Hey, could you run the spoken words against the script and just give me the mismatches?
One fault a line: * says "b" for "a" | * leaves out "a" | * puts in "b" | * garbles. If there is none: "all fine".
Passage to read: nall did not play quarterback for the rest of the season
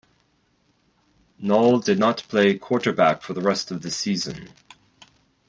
all fine